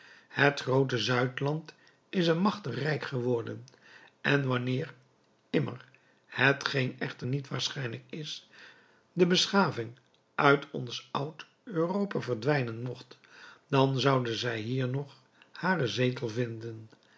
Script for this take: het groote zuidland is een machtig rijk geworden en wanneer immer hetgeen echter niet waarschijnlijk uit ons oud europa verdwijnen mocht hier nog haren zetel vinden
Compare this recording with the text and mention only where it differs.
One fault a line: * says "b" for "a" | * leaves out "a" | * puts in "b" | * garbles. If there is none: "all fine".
* puts in "is de beschaving"
* puts in "dan zoude zij"